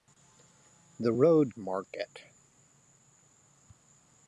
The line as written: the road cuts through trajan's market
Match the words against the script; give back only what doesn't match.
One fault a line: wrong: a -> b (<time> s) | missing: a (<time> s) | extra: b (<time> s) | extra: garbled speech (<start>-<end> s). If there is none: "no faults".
missing: cuts through trajan's (1.6 s)